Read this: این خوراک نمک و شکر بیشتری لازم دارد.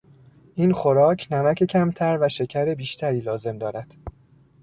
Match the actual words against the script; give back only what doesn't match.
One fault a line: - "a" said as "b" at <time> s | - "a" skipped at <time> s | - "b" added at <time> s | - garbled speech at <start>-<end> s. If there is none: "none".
- "کمتر" added at 1.6 s